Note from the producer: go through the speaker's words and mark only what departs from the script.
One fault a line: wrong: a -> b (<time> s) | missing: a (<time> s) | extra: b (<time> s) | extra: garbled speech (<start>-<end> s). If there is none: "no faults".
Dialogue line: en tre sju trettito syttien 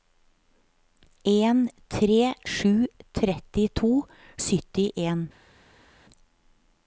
no faults